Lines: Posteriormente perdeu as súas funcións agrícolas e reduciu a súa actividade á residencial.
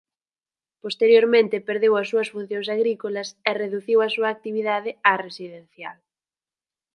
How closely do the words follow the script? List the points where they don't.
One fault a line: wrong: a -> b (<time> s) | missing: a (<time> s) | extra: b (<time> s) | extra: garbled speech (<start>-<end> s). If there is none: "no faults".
no faults